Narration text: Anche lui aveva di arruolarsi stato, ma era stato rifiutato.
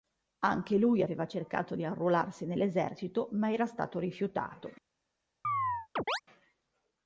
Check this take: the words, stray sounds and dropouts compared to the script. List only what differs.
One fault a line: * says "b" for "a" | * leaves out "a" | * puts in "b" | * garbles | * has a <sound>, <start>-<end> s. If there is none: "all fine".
* puts in "cercato"
* says "nell'esercito" for "stato"
* has a chirp, 5.4-6.2 s